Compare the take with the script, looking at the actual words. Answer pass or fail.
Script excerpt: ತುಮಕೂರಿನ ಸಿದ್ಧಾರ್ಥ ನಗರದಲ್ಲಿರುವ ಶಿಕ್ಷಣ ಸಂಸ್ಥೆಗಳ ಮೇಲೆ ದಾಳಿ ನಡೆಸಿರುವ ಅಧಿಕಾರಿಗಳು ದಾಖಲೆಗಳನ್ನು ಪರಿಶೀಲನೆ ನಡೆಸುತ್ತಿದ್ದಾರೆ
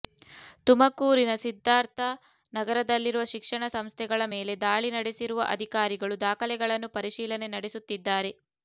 pass